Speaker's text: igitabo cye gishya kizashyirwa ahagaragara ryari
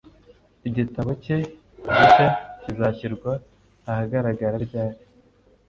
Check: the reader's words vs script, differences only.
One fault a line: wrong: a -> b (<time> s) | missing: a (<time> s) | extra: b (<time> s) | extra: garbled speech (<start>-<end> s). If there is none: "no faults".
no faults